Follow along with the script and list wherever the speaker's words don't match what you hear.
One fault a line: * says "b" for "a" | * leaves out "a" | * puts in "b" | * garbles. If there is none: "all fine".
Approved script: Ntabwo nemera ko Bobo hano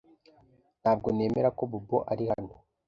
* puts in "ari"